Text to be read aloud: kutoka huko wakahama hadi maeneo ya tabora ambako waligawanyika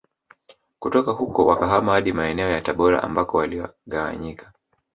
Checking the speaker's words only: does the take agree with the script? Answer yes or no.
yes